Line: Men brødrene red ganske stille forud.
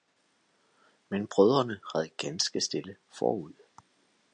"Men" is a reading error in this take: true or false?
false